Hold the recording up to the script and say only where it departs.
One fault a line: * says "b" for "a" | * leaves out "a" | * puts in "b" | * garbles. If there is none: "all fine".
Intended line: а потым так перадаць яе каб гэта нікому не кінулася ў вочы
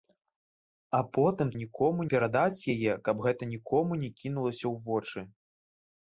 * says "нікому" for "так"